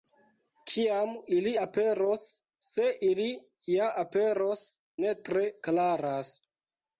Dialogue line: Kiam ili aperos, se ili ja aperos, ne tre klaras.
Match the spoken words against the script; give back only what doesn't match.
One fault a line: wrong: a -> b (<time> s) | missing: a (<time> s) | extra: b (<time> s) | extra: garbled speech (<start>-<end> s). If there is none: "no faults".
no faults